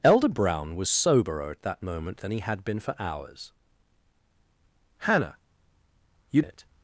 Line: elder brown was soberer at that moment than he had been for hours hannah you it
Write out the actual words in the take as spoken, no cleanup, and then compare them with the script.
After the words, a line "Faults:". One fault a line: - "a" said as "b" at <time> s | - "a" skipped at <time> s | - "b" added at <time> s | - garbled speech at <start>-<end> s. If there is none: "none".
elder brown was soberer at that moment than he had been for hours hannah you it
Faults:
none